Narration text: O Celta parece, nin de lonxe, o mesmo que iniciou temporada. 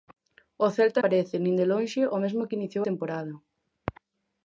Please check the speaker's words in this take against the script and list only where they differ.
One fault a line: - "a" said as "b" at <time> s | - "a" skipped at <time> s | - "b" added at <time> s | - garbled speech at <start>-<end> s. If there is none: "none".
none